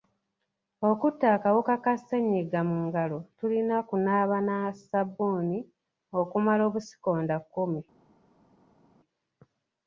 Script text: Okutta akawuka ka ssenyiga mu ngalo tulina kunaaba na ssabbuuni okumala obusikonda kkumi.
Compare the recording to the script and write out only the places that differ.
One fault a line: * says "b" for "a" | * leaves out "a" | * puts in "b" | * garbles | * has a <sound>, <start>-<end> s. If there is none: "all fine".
all fine